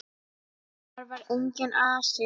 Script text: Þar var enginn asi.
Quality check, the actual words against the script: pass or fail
pass